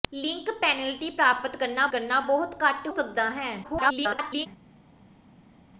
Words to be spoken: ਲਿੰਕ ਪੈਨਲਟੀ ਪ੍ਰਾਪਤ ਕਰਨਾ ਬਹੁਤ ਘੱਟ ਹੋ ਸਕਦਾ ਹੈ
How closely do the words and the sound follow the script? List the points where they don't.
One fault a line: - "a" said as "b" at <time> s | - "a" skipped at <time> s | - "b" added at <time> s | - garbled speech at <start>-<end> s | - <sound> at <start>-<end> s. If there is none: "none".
- "ਕਰਨਾ" added at 1.9 s
- "ਹੋ" skipped at 2.9 s
- garbled speech at 3.6-4.5 s